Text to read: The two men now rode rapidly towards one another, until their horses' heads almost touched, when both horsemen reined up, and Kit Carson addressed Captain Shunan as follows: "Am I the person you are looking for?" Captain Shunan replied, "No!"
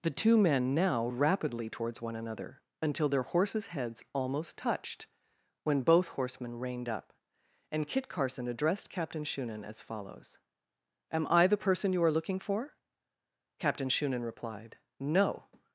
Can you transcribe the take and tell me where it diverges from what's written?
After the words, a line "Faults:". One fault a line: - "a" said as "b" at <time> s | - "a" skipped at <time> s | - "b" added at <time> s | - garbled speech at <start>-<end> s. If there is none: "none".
The two men now rapidly towards one another, until their horses' heads almost touched, when both horsemen reined up, and Kit Carson addressed Captain Shunan as follows: "Am I the person you are looking for?" Captain Shunan replied, "No!"
Faults:
- "rode" skipped at 1.1 s